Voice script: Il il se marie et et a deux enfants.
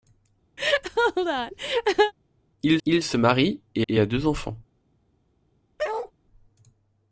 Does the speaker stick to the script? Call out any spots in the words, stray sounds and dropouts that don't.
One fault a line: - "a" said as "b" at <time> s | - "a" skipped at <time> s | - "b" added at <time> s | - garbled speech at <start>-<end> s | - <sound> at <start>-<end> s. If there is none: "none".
- laugh at 0.6-2.1 s
- bark at 5.8-6.1 s